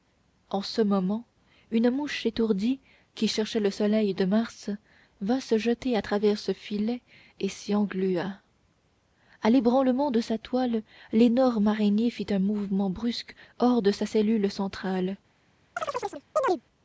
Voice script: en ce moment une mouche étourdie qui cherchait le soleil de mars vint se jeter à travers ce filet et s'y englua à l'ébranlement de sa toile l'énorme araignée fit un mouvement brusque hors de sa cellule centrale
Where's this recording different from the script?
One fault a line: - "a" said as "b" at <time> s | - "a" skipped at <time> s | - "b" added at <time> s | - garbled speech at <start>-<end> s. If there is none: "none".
none